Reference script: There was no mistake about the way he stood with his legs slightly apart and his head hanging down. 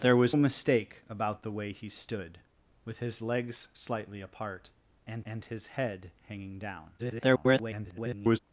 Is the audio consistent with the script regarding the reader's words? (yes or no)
no